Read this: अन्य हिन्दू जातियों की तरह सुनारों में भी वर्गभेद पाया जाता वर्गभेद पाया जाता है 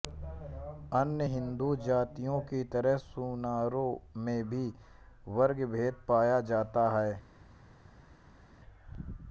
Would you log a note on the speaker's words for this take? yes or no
yes